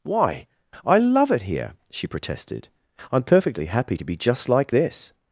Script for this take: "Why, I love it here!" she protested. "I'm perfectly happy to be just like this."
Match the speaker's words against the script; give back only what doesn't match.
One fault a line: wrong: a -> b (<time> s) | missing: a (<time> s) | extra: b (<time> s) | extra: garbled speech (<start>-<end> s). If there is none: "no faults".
no faults